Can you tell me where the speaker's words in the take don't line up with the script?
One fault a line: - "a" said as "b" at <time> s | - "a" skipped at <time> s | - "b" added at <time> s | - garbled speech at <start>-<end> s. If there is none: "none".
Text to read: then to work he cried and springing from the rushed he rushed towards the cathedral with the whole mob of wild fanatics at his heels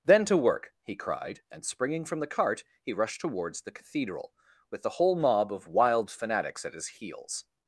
- "rushed" said as "cart" at 2.3 s